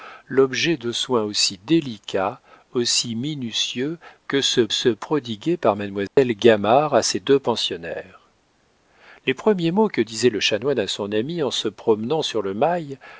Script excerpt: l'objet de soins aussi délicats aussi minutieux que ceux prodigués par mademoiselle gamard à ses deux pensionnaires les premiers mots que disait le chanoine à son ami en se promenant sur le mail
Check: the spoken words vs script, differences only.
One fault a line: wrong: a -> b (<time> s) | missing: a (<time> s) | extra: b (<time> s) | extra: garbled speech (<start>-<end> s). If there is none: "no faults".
extra: ceux (4.7 s)